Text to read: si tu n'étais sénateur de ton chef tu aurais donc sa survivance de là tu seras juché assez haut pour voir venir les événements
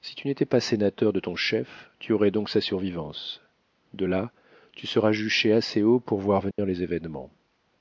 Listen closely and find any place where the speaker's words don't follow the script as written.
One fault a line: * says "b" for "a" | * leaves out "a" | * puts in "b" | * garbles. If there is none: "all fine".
* puts in "pas"